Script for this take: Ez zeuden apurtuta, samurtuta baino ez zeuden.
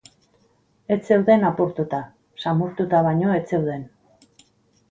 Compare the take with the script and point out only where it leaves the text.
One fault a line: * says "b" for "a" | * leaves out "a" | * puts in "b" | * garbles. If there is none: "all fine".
all fine